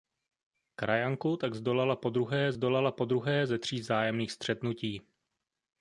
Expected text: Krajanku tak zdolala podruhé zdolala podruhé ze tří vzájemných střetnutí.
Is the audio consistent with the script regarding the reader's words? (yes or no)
yes